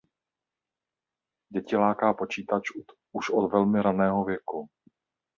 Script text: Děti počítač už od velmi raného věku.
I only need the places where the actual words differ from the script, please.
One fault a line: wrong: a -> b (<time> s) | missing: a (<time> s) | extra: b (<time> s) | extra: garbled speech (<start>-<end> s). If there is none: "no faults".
extra: láká (1.8 s)